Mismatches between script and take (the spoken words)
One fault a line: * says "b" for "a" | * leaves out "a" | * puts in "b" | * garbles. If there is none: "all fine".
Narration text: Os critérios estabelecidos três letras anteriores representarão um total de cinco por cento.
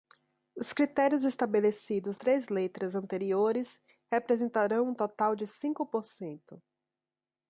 all fine